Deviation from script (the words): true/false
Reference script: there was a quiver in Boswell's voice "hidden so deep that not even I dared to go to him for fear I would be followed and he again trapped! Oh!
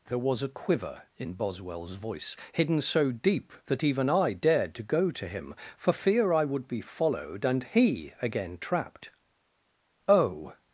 true